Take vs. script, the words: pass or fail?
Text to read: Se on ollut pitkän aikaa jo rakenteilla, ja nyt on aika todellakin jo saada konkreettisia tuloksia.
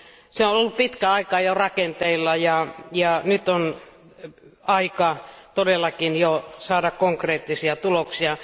pass